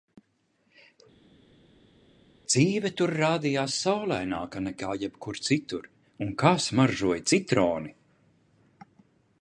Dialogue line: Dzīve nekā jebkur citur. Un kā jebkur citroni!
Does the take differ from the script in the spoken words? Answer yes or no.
yes